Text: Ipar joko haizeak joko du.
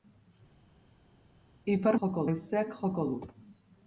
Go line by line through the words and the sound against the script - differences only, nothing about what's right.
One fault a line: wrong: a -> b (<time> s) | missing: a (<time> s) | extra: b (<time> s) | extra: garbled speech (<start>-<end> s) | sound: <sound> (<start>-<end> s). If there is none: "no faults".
no faults